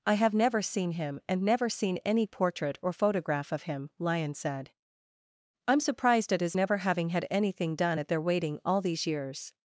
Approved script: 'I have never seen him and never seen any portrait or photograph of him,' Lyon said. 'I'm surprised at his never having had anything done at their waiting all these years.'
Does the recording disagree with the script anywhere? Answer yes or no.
no